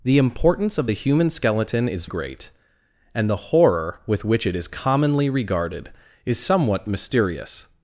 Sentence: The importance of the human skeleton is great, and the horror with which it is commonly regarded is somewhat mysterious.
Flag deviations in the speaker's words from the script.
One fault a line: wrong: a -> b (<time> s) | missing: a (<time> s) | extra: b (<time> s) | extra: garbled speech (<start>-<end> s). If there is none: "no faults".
no faults